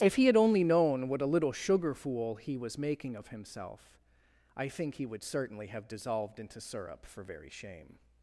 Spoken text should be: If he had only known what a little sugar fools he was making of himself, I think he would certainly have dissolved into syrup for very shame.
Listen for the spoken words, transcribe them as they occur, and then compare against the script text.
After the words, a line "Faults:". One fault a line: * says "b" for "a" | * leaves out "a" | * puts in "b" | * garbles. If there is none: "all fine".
If he had only known what a little sugar fool he was making of himself, I think he would certainly have dissolved into syrup for very shame.
Faults:
* says "fool" for "fools"